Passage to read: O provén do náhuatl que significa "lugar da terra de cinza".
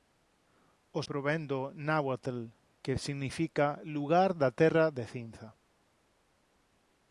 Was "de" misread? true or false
false